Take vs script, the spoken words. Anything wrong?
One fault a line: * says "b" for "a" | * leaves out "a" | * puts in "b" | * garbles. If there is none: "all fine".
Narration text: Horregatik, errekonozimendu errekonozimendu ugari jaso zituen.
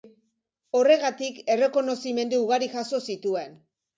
* leaves out "errekonozimendu"